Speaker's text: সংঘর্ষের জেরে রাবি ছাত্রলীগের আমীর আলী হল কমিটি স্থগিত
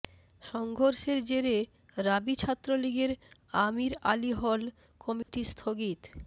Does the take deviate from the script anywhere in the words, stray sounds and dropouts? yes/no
yes